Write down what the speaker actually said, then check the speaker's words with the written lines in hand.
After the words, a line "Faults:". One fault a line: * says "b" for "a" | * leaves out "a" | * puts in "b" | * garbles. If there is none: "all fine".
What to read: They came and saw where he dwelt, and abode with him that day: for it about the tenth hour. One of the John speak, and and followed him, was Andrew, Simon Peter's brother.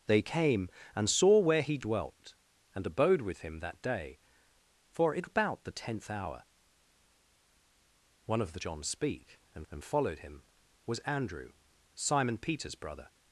They came and saw where he dwelt, and abode with him that day: for it about the tenth hour. One of the John speak, and and followed him, was Andrew, Simon Peter's brother.
Faults:
all fine